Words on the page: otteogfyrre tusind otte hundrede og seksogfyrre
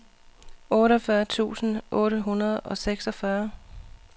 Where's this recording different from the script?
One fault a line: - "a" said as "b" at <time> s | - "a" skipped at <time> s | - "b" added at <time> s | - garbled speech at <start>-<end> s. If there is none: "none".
none